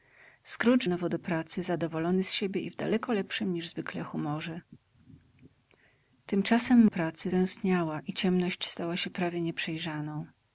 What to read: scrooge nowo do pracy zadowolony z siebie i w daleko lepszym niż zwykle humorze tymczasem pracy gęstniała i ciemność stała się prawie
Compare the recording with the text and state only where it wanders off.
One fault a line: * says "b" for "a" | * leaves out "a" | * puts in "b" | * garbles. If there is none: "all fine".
all fine